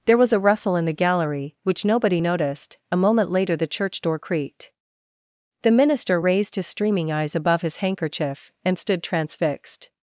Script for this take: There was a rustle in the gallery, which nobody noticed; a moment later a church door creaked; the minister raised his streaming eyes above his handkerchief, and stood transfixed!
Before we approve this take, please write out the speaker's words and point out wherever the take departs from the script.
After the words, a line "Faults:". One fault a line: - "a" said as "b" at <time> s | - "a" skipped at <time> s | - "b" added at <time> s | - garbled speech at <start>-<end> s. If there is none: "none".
There was a rustle in the gallery, which nobody noticed; a moment later the church door creaked; the minister raised his streaming eyes above his handkerchief, and stood transfixed!
Faults:
- "a" said as "the" at 3.6 s